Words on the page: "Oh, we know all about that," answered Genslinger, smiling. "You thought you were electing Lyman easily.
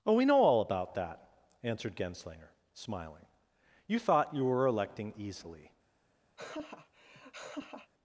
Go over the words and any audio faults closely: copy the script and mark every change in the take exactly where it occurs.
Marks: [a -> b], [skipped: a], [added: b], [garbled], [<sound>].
"Oh, we know all about that," answered Genslinger, smiling. "You thought you were electing [skipped: Lyman] easily. [laugh]